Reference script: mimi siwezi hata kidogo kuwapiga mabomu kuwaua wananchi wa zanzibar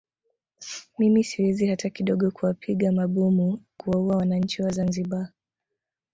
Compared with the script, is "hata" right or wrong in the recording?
right